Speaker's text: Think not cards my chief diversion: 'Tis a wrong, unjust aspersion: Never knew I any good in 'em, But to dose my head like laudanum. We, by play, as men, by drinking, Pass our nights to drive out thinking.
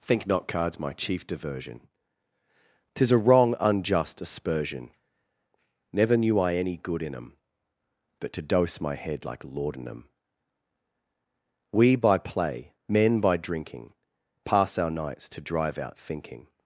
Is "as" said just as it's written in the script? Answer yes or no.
no